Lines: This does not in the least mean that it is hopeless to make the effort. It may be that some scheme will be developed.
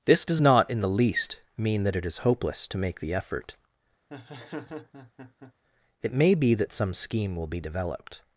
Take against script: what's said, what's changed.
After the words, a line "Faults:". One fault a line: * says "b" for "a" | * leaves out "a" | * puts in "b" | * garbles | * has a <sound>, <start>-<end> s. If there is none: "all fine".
This does not in the least mean that it is hopeless to make the effort. It may be that some scheme will be developed.
Faults:
* has a laugh, 4.1-5.5 s